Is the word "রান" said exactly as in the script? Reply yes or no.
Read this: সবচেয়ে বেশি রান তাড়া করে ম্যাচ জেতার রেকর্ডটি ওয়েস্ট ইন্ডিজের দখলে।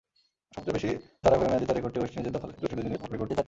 no